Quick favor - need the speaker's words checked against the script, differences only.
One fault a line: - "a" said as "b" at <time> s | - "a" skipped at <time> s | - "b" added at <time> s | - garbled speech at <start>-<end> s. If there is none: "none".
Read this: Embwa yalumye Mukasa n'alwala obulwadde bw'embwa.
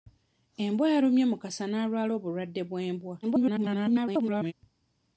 - garbled speech at 3.2-4.5 s